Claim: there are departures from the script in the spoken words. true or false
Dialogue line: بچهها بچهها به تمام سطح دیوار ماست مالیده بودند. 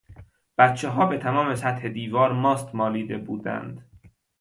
true